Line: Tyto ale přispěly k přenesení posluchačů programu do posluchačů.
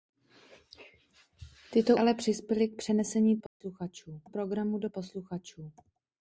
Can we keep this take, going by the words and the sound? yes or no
no